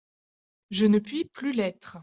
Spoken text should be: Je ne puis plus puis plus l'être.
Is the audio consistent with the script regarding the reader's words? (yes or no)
no